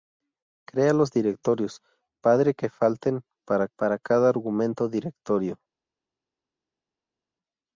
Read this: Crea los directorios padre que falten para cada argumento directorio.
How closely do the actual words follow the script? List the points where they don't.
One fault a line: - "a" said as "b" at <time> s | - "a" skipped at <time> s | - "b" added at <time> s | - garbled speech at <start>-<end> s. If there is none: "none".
- "para" added at 3.8 s